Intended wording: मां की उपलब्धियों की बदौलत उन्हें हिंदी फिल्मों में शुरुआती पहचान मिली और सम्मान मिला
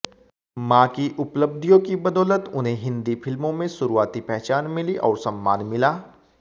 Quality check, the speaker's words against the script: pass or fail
pass